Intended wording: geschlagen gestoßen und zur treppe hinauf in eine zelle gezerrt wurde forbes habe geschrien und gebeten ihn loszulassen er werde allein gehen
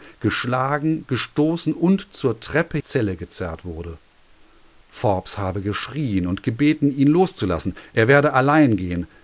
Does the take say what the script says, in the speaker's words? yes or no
no